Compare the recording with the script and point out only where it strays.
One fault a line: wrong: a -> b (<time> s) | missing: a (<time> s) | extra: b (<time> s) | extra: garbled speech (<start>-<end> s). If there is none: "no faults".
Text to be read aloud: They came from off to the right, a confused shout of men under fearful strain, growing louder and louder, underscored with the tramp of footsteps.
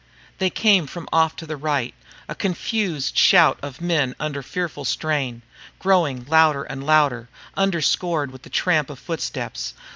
no faults